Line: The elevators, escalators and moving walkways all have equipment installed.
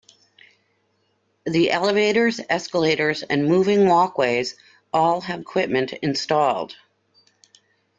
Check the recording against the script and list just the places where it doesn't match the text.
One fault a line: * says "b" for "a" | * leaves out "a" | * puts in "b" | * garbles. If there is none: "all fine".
all fine